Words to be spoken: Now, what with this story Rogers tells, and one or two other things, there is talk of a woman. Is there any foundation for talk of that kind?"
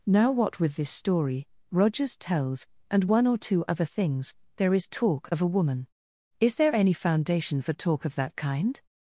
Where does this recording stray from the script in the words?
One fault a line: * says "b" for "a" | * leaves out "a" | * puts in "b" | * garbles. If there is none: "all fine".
all fine